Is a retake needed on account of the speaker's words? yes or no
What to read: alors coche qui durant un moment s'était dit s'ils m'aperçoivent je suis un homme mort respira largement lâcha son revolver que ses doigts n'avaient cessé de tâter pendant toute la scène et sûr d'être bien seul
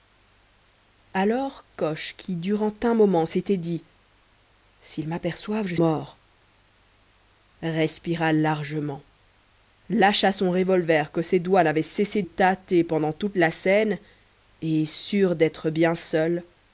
yes